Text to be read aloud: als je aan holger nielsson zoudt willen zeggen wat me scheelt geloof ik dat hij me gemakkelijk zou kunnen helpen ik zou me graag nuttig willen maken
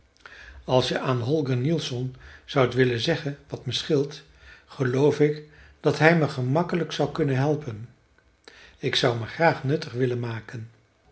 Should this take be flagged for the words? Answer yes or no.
no